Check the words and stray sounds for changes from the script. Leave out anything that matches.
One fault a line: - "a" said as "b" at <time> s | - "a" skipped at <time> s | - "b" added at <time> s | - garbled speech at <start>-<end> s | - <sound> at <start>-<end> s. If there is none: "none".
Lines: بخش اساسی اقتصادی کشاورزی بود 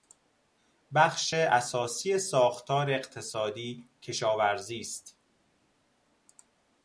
- "ساختار" added at 2.2 s
- "بود" said as "است" at 4.8 s